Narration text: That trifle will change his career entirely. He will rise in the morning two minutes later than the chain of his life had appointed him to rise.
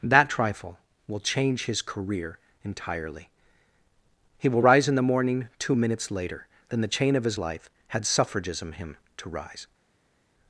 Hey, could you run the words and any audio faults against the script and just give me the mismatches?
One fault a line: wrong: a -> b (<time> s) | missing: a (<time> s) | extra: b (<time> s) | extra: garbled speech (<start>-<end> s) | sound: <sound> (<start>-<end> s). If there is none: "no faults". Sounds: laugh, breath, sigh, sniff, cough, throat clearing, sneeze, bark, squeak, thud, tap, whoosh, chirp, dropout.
wrong: appointed -> suffragism (8.1 s)